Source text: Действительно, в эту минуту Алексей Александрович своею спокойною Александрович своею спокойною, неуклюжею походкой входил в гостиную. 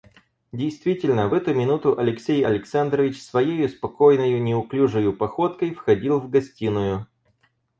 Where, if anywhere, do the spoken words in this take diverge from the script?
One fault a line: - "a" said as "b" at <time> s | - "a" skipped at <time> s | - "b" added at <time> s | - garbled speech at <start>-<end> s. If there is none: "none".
- "Александрович своею спокойною" skipped at 4.4 s